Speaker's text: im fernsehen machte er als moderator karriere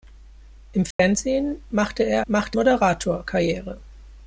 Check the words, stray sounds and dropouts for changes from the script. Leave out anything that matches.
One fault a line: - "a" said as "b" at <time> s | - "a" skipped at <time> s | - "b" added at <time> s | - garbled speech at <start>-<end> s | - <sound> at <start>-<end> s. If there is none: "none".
- dropout at 0.9-1.0 s
- "als" said as "machte" at 2.3 s